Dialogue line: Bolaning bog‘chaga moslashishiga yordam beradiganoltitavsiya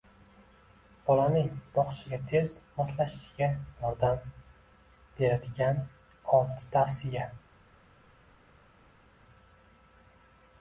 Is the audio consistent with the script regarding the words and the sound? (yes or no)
no